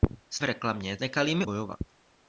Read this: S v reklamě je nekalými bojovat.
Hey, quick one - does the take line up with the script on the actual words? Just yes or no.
yes